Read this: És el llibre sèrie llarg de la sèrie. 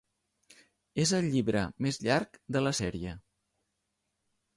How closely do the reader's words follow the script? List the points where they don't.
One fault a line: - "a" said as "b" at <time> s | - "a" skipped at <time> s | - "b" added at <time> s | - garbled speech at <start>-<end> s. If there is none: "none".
- "sèrie" said as "més" at 1.9 s